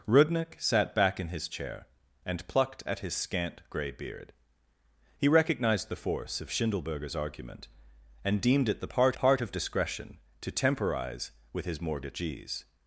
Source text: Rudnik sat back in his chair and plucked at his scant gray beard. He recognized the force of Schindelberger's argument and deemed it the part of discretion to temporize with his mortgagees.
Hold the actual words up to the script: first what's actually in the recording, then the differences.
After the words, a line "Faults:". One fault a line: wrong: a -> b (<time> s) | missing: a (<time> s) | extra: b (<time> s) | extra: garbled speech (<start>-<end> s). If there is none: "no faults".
Rudnik sat back in his chair and plucked at his scant gray beard. He recognized the force of Schindelberger's argument and deemed it the part part of discretion to temporize with his mortgagees.
Faults:
extra: part (9.1 s)